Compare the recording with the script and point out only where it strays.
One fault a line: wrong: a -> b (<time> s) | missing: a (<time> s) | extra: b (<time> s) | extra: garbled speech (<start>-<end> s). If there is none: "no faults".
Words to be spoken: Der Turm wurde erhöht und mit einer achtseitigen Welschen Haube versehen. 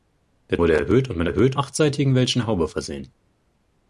missing: Turm (0.6 s)
wrong: einer -> erhöht (1.3 s)